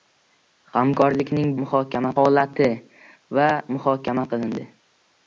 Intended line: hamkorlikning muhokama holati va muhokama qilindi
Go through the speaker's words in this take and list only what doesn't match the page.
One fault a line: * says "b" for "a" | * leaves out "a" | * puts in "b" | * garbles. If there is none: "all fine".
all fine